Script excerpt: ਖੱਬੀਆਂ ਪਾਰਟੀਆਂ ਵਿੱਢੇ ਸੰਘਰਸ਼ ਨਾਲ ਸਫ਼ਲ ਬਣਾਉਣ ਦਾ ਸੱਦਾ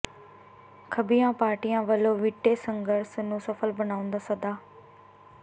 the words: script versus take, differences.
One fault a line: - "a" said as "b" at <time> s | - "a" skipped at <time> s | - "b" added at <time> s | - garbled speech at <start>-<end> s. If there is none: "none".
- "ਵੱਲੋਂ" added at 1.8 s
- "ਨਾਲ" said as "ਨੂੰ" at 3.2 s